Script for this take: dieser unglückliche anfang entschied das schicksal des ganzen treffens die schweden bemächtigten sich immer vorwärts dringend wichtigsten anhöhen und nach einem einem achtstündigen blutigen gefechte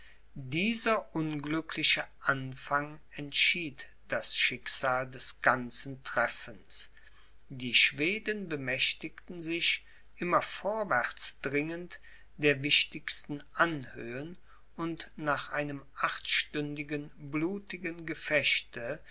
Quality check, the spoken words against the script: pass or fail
fail